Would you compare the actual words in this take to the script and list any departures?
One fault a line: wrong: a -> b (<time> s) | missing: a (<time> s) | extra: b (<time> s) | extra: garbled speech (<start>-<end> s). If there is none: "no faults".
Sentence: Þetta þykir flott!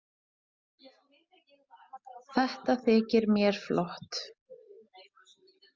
extra: mér (3.3 s)